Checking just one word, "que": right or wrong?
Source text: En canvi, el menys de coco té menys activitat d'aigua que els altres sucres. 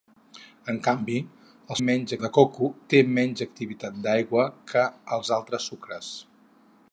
right